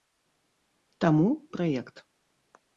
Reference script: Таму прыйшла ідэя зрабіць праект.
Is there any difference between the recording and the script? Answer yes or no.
yes